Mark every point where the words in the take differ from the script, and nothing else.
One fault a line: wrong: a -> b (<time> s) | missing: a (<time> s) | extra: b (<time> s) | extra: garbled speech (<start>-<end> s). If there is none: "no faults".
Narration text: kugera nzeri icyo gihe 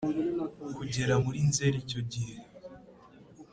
extra: muri (1.2 s)